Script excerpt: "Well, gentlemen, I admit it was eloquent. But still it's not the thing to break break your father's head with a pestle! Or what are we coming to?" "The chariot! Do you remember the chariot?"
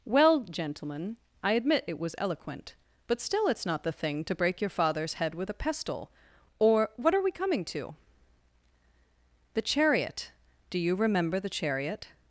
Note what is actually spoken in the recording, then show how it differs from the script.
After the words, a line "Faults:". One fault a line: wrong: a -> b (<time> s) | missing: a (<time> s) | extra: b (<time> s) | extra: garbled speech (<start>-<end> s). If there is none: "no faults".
"Well, gentlemen, I admit it was eloquent. But still it's not the thing to break your father's head with a pestle! Or what are we coming to?" "The chariot! Do you remember the chariot?"
Faults:
missing: break (4.6 s)